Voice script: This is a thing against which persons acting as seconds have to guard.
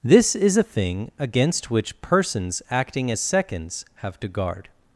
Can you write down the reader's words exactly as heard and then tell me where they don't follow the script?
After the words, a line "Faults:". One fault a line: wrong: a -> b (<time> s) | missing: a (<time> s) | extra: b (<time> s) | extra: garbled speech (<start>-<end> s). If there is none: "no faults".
This is a thing against which persons acting as seconds have to guard.
Faults:
no faults